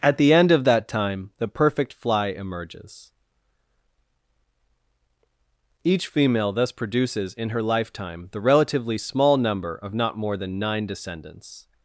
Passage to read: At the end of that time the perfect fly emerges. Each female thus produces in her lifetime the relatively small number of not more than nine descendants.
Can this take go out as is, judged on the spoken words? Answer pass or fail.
pass